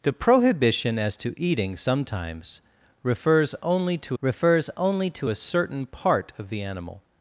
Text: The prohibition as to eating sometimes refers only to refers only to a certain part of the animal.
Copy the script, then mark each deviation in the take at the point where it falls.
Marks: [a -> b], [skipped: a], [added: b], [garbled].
The prohibition as to eating sometimes refers only to refers only to a certain part of the animal.